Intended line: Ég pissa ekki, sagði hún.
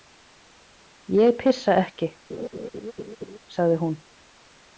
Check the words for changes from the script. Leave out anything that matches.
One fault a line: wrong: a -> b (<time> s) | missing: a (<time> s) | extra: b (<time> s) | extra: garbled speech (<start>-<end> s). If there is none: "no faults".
no faults